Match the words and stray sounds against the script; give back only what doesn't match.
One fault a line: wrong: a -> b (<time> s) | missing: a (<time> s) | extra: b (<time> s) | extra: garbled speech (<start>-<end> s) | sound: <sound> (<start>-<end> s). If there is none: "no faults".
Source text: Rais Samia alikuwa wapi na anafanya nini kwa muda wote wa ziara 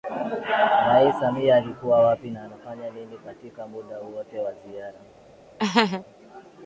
wrong: kwa -> katika (3.2 s)
sound: laugh (5.6-6.0 s)